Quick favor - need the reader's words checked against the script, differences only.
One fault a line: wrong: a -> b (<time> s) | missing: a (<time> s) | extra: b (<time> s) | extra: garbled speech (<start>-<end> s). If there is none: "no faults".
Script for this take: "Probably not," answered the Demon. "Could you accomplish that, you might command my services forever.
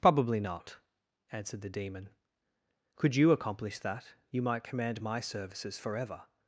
no faults